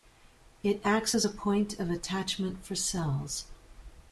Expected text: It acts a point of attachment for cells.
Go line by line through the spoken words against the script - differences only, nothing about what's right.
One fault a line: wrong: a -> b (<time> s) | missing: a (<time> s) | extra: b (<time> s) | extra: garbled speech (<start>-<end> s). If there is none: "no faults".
extra: as (1.1 s)